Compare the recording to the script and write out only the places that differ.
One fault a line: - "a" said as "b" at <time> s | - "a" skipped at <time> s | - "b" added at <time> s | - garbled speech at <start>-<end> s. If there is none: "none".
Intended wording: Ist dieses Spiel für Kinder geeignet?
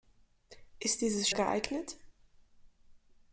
- "Spiel für Kinder" skipped at 1.3 s